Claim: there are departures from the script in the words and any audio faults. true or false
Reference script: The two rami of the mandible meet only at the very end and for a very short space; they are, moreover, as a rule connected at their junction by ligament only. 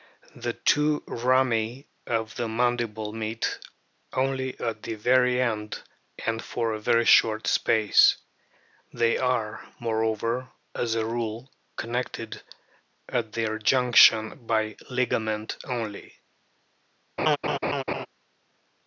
true